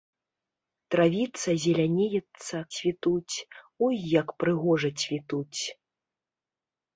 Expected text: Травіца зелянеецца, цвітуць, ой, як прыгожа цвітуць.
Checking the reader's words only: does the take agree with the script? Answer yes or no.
yes